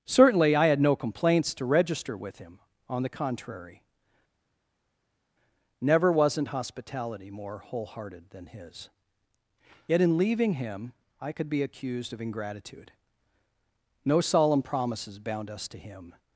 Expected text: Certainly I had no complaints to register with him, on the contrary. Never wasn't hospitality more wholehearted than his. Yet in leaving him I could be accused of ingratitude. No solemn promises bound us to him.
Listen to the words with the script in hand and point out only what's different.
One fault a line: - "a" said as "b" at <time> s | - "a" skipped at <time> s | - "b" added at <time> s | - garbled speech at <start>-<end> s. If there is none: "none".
none